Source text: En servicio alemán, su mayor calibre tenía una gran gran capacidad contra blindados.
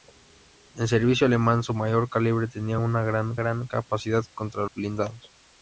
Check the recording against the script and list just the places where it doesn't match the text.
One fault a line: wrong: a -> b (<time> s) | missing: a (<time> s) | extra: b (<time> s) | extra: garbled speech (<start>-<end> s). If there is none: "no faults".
no faults